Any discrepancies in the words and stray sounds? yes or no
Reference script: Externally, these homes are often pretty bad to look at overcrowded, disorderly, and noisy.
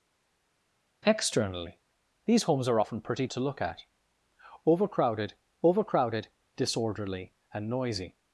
yes